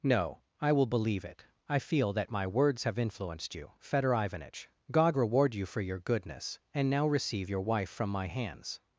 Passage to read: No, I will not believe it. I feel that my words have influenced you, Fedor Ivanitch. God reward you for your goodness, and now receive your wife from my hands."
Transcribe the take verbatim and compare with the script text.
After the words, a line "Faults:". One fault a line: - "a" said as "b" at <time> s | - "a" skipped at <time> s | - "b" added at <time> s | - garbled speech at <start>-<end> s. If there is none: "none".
No, I will believe it. I feel that my words have influenced you, Fedor Ivanitch. God reward you for your goodness, and now receive your wife from my hands."
Faults:
- "not" skipped at 0.9 s